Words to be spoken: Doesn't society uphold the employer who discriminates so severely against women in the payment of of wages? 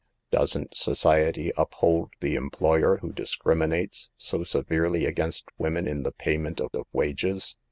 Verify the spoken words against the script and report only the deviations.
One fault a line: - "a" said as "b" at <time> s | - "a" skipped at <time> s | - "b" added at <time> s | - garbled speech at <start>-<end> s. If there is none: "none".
none